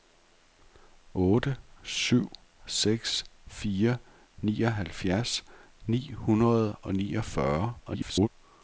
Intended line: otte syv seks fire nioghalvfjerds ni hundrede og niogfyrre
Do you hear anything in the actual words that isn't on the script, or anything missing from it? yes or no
yes